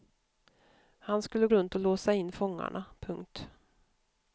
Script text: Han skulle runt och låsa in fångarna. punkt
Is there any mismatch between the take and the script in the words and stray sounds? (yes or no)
no